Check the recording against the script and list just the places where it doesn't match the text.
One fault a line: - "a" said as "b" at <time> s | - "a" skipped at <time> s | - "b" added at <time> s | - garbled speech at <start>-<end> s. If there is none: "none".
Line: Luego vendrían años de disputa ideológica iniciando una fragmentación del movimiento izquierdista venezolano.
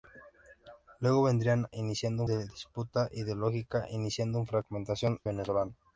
- "años" said as "iniciando" at 1.8 s
- "del movimiento izquierdista" skipped at 5.2 s